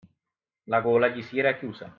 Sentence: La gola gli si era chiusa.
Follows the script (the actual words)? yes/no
yes